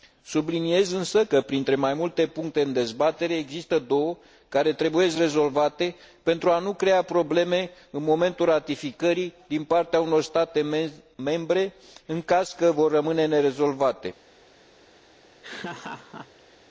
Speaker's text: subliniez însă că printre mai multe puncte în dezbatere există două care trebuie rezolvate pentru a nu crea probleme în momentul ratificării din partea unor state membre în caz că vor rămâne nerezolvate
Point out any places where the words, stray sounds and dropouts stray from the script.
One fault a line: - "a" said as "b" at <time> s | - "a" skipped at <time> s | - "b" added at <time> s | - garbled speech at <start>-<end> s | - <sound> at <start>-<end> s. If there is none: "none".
- laugh at 15.4-16.6 s